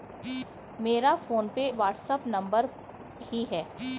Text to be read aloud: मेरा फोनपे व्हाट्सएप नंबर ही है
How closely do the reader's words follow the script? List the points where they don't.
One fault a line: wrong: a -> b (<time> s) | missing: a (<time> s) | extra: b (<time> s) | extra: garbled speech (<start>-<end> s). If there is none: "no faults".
no faults